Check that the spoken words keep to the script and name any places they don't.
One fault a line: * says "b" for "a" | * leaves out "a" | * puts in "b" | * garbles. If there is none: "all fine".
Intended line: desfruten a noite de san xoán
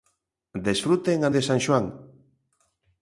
* leaves out "noite"